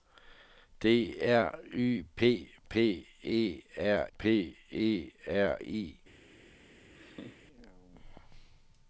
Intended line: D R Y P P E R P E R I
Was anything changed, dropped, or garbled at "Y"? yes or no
no